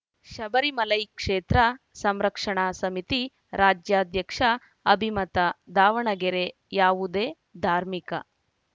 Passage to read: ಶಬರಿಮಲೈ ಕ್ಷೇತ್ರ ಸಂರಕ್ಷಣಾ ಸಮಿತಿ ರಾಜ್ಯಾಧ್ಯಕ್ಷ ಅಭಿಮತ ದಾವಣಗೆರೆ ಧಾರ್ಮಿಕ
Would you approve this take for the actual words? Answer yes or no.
no